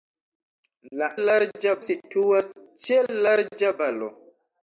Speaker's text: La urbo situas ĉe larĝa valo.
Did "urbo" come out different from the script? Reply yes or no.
yes